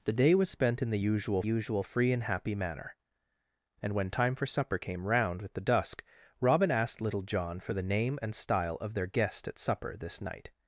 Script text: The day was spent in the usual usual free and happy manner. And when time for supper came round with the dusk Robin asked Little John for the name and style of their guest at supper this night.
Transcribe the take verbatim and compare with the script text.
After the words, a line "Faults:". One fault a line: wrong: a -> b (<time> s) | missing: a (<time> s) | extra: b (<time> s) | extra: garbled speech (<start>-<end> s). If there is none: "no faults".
The day was spent in the usual usual free and happy manner. And when time for supper came round with the dusk Robin asked Little John for the name and style of their guest at supper this night.
Faults:
no faults